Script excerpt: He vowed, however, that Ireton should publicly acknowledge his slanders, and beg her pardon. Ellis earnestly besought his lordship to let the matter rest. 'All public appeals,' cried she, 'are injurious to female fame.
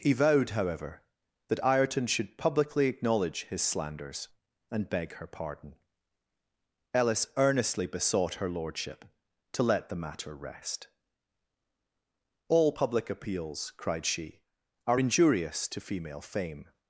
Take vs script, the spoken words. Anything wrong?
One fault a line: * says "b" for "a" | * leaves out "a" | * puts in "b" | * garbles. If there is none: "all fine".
* says "her" for "his"